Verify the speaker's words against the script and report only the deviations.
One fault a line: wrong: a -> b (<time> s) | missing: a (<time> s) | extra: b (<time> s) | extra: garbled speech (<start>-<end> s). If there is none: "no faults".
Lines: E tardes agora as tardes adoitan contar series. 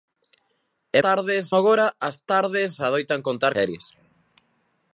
no faults